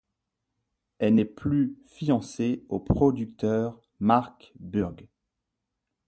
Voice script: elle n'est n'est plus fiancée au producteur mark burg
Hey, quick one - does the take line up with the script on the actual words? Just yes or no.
no